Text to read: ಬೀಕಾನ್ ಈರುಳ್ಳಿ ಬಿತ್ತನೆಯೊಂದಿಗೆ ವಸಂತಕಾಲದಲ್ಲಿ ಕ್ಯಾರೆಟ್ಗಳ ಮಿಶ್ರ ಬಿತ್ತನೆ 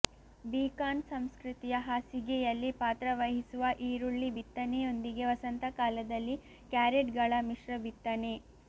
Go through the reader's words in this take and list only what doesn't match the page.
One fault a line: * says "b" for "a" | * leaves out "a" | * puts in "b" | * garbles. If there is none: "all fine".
* puts in "ಸಂಸ್ಕೃತಿಯ ಹಾಸಿಗೆಯಲ್ಲಿ ಪಾತ್ರವಹಿಸುವ"